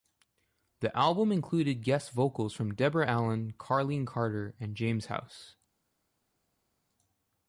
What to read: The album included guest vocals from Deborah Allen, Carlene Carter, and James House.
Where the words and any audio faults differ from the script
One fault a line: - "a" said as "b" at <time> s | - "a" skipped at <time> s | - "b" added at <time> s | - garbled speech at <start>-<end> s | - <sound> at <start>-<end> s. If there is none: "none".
none